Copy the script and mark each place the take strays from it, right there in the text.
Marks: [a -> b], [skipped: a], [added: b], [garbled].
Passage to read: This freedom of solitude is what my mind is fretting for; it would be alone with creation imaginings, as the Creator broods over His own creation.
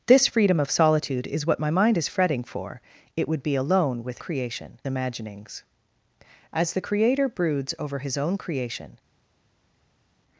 This freedom of solitude is what my mind is fretting for; it would be alone with creation imaginings, as the Creator broods over His own creation.